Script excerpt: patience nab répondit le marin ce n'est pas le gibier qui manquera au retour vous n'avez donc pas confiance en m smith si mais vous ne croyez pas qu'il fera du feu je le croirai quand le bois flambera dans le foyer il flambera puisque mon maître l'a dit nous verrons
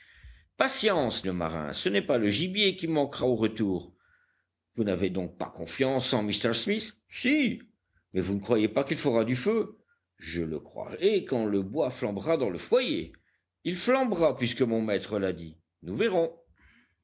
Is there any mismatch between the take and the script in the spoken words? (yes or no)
yes